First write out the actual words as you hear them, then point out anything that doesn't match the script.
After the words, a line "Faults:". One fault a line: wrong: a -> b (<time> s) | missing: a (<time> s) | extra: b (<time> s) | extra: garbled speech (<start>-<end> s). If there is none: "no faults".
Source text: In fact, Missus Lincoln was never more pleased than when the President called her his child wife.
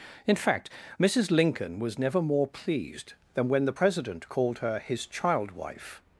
In fact, Missus Lincoln was never more pleased than when the President called her his child wife.
Faults:
no faults